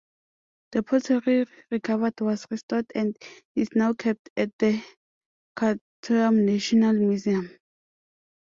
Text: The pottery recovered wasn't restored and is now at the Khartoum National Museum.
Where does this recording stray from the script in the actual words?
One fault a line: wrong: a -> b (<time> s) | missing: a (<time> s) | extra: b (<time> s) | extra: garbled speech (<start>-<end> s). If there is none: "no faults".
wrong: wasn't -> was (2.2 s)
extra: kept (3.9 s)